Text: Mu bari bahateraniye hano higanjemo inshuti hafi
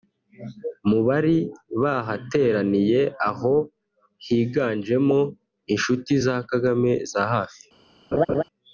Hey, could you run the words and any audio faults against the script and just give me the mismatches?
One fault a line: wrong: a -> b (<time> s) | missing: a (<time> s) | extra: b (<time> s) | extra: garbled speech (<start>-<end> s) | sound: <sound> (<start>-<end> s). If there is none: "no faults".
wrong: hano -> aho (3.3 s)
extra: za Kagame za (6.2 s)
sound: laugh (8.1-8.4 s)